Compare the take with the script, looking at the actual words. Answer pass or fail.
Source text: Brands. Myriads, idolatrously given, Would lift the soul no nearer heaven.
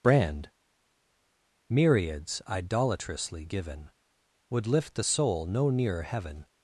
fail